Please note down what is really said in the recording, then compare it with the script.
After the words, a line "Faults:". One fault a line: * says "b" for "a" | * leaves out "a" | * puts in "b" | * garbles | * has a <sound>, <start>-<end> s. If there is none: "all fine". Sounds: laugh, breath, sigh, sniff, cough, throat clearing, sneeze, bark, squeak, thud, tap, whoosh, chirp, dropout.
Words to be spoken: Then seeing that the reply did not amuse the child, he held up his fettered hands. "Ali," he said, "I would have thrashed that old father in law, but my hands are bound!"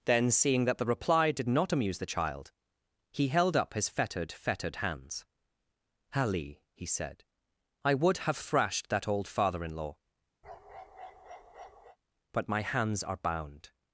Then seeing that the reply did not amuse the child, he held up his fettered fettered hands. "Ali," he said, "I would have thrashed that old father in law, but my hands are bound!"
Faults:
* puts in "fettered"
* has a bark, 10.4-12.0 s